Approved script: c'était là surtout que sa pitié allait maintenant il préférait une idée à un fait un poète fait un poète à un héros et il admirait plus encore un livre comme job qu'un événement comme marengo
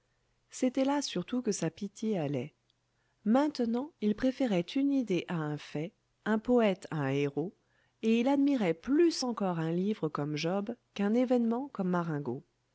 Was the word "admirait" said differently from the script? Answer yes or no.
no